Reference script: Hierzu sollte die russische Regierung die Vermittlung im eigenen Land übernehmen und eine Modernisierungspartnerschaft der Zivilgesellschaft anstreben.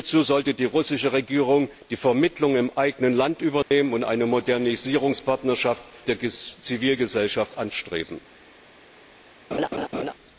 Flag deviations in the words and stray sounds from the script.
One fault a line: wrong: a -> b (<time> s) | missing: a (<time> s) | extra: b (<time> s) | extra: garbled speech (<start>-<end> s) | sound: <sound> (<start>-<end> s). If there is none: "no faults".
sound: dropout (3.6-3.7 s)
sound: laugh (9.5-10.1 s)